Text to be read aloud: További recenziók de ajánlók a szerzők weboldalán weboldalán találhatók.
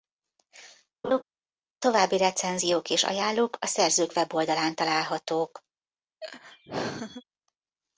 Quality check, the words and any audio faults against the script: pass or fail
fail